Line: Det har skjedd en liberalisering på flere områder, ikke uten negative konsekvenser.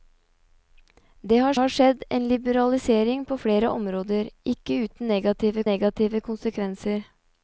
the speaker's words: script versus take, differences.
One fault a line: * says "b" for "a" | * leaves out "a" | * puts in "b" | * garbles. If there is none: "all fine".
* puts in "har"
* puts in "negative"